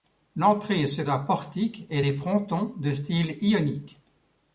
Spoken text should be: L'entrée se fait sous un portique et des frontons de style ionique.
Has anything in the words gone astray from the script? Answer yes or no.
yes